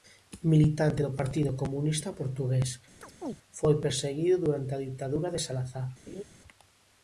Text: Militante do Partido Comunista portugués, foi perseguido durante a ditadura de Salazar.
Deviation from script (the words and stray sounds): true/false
true